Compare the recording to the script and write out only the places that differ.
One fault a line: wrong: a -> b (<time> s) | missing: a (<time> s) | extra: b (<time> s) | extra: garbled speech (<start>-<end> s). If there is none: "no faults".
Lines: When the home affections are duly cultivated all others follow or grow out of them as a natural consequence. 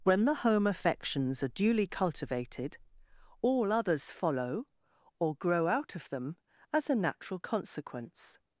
no faults